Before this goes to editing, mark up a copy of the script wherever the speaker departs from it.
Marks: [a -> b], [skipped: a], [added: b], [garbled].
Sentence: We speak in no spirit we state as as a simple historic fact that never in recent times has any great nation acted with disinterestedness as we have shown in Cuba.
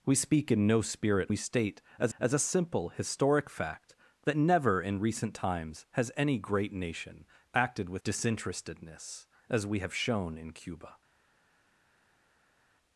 We speak in no spirit we state as as a simple historic fact that never in recent times has any great nation acted with disinterestedness as we have shown in Cuba.